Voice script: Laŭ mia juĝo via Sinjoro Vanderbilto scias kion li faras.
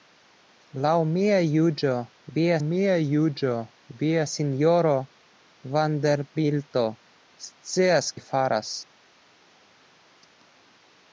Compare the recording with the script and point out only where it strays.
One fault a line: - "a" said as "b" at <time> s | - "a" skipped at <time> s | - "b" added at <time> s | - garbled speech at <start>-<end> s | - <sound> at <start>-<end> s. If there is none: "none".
- "mia juĝo via" added at 2.6 s
- "kion" skipped at 8.1 s